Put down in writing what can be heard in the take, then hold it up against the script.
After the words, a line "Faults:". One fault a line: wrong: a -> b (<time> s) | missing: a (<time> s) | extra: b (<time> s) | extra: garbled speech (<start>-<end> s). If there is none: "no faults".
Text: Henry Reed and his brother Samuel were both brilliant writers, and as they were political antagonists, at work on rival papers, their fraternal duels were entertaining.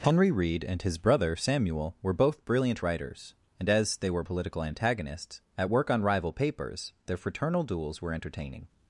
Henry Reed and his brother Samuel were both brilliant writers, and as they were political antagonists, at work on rival papers, their fraternal duels were entertaining.
Faults:
no faults